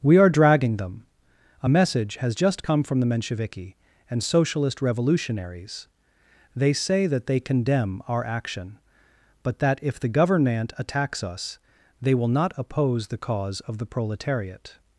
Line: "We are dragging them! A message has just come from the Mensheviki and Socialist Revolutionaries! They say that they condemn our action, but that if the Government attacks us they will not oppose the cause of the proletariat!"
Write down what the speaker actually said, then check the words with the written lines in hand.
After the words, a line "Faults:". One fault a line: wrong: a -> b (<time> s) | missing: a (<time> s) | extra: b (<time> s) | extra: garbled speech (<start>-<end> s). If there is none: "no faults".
"We are dragging them! A message has just come from the Mensheviki and Socialist Revolutionaries! They say that they condemn our action, but that if the Government attacks us they will not oppose the cause of the proletariat!"
Faults:
no faults